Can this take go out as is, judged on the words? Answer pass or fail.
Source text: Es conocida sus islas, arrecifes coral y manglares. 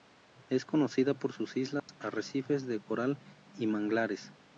fail